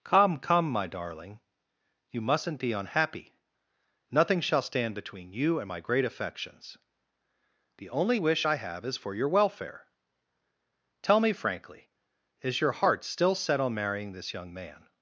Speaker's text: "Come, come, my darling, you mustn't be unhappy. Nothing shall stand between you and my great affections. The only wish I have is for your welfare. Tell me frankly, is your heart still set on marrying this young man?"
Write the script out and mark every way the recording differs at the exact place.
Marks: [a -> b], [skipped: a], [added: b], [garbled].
"Come, come, my darling, you mustn't be unhappy. Nothing shall stand between you and my great affections. The only wish I have is for your welfare. Tell me frankly, is your heart still set on marrying this young man?"